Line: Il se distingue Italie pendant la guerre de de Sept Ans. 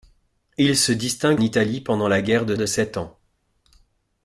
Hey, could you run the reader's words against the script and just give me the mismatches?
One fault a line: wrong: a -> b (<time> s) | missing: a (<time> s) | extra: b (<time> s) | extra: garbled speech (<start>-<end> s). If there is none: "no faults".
no faults